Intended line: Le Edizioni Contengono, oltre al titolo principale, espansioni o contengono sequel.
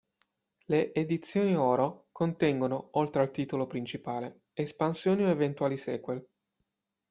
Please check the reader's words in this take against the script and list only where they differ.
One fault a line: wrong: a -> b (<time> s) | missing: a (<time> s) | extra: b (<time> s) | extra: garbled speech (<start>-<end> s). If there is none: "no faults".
extra: Oro (1.6 s)
wrong: contengono -> eventuali (5.3 s)